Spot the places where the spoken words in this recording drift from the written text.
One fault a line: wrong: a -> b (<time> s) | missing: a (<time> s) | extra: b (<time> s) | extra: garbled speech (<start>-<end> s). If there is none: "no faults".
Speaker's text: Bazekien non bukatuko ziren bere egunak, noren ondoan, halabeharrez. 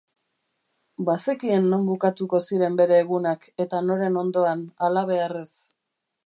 extra: eta (3.7 s)